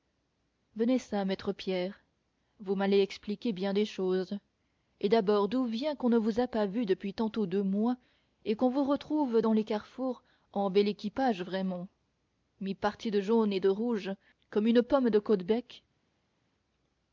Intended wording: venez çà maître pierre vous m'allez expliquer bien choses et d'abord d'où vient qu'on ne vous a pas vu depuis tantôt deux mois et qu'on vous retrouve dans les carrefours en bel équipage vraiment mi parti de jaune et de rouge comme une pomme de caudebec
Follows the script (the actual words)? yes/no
no